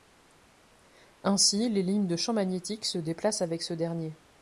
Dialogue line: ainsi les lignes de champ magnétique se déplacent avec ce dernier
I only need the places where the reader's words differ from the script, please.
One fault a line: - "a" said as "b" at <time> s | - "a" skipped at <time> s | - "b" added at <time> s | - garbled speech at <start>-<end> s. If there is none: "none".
none